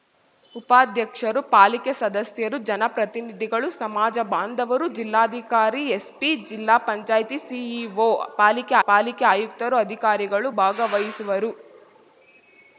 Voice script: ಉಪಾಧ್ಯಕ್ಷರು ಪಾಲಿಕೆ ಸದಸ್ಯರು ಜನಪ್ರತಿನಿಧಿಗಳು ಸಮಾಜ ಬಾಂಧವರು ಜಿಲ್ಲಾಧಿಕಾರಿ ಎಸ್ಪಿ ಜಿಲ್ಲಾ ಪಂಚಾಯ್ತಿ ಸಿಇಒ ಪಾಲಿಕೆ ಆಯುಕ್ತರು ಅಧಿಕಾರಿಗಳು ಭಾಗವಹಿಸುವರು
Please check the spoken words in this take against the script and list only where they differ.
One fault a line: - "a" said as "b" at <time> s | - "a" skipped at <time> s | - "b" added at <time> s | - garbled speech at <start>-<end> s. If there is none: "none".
- "ಪಾಲಿಕೆ" added at 8.9 s